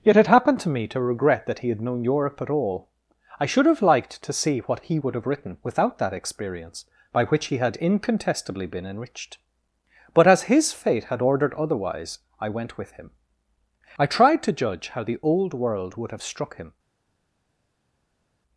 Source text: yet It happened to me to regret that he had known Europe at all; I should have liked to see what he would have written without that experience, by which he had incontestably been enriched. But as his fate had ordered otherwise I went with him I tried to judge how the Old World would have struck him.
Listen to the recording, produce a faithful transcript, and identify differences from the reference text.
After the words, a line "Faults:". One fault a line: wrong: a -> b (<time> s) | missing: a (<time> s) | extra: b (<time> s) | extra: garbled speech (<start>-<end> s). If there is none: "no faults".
yet It happened to me to regret that he had known Europe at all; I should have liked to see what he would have written without that experience, by which he had incontestably been enriched. But as his fate had ordered otherwise I went with him I tried to judge how the Old World would have struck him.
Faults:
no faults